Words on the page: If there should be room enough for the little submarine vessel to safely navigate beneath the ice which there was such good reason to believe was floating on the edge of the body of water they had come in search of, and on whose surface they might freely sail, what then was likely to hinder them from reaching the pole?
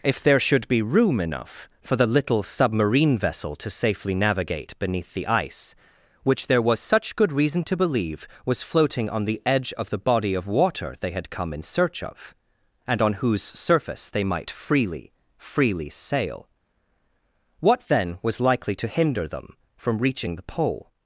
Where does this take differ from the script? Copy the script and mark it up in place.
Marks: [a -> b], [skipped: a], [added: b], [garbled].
If there should be room enough for the little submarine vessel to safely navigate beneath the ice which there was such good reason to believe was floating on the edge of the body of water they had come in search of, and on whose surface they might freely [added: freely] sail, what then was likely to hinder them from reaching the pole?